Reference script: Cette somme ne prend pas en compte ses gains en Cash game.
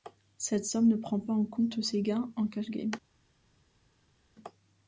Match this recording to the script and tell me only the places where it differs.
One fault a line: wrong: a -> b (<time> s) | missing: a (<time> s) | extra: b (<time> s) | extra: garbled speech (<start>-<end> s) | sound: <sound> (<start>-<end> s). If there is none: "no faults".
no faults